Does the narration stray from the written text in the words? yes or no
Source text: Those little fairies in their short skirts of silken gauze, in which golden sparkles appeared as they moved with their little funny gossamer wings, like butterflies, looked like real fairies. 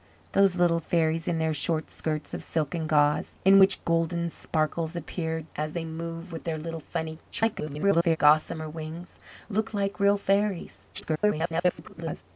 yes